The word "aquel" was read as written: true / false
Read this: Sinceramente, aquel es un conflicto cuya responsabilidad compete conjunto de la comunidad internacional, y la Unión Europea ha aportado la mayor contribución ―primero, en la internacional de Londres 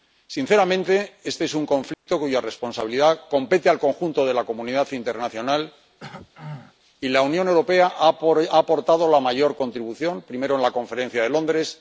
false